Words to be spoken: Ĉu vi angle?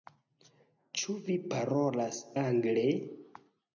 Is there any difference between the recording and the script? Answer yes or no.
yes